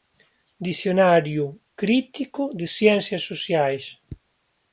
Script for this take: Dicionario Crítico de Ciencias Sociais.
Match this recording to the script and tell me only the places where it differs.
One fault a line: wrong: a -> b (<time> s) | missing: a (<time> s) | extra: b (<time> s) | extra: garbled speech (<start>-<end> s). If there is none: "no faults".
no faults